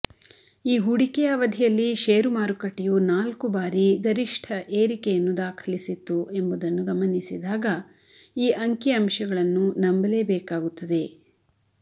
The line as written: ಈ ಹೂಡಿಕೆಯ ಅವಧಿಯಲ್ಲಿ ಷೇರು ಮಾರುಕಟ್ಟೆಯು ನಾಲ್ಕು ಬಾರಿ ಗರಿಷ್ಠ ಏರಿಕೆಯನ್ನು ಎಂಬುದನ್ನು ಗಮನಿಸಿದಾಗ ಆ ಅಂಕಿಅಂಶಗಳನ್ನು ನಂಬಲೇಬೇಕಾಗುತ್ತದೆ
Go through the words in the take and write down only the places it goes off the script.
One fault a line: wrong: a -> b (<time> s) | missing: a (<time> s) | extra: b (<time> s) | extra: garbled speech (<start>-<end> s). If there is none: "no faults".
extra: ದಾಖಲಿಸಿತ್ತು (5.4 s)
wrong: ಆ -> ಈ (8.4 s)